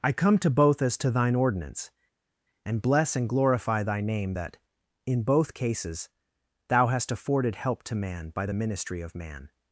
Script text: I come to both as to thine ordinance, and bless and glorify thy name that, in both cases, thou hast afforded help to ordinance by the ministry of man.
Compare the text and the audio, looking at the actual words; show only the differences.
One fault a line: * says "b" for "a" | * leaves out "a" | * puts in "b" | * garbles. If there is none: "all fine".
* says "man" for "ordinance"